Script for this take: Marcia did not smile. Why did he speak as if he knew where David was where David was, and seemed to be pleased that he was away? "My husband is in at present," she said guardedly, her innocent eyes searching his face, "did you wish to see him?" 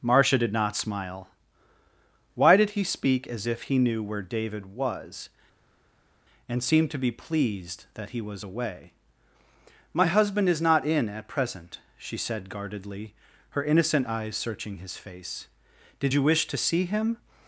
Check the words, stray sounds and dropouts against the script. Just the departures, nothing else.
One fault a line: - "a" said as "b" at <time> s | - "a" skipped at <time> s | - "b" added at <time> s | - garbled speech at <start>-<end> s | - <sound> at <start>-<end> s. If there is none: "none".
- "where David was" skipped at 5.3 s
- "not" added at 10.6 s